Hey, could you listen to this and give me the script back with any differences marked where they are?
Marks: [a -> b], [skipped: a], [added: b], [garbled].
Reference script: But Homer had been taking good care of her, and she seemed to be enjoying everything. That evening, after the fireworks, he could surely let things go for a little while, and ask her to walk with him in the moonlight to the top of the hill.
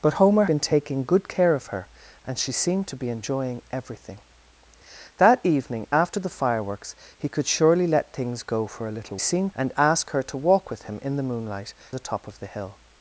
But Homer [skipped: had] been taking good care of her, and she seemed to be enjoying everything. That evening, after the fireworks, he could surely let things go for a little [while, -> seemed] and ask her to walk with him in the moonlight [skipped: to] the top of the hill.